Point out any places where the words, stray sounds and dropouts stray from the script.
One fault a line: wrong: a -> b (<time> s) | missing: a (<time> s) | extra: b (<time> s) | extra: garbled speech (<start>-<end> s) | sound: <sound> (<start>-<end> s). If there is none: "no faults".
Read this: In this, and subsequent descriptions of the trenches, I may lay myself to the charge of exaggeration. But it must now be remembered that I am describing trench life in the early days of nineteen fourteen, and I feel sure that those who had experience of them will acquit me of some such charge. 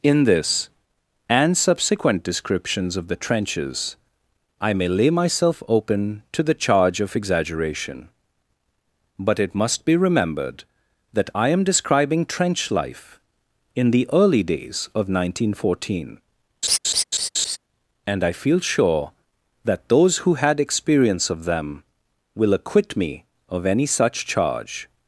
extra: open (5.7 s)
missing: now (9.8 s)
sound: laugh (16.6-17.6 s)
wrong: some -> any (23.7 s)